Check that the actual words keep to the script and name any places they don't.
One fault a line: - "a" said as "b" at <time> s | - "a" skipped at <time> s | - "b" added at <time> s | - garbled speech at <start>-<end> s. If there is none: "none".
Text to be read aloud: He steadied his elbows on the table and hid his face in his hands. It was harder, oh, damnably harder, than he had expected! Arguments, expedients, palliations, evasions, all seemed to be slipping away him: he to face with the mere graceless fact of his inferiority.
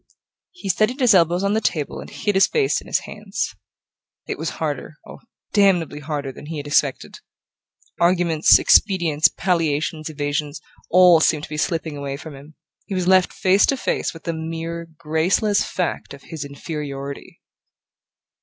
- "from" added at 12.2 s
- "was left face" added at 12.9 s